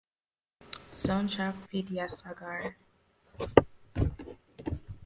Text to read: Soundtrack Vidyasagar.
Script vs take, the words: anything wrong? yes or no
no